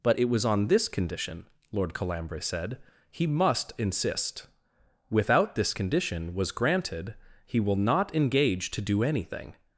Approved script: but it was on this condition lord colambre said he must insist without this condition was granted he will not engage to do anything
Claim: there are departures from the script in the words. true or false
false